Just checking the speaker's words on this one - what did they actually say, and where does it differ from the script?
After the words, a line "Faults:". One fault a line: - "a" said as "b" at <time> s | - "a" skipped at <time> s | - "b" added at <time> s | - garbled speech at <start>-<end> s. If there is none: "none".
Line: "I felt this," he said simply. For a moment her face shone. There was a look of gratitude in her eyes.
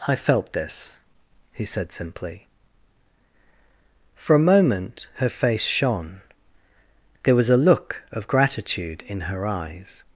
"I felt this," he said simply. For a moment her face shone. There was a look of gratitude in her eyes.
Faults:
none